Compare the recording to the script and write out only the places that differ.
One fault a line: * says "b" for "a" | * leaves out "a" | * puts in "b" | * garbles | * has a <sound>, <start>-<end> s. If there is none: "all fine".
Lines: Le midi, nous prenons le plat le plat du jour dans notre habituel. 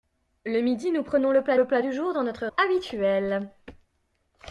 all fine